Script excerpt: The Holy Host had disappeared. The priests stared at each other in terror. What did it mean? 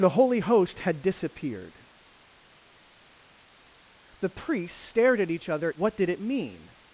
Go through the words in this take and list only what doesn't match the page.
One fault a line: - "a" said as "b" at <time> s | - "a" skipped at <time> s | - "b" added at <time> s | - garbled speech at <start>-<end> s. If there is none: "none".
- "in terror" skipped at 5.7 s